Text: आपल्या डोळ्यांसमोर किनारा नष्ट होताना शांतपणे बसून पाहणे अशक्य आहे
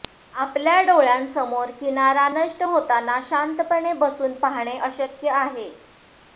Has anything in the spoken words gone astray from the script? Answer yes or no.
no